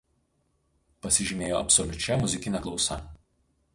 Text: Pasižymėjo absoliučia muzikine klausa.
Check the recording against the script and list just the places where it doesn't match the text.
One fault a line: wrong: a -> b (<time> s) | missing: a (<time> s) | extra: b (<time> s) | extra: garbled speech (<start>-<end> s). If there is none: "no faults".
no faults